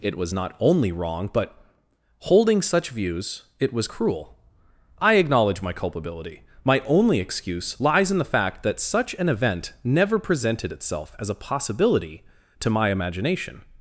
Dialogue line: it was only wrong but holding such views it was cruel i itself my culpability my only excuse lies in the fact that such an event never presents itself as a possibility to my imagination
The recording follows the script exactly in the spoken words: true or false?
false